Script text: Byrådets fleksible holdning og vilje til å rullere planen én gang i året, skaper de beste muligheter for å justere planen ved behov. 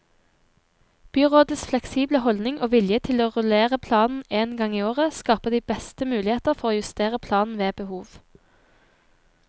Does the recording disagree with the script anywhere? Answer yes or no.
no